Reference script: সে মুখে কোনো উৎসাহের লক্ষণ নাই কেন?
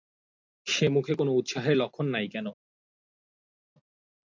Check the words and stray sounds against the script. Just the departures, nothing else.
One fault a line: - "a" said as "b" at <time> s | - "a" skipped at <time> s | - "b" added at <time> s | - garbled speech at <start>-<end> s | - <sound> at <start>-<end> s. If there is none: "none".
none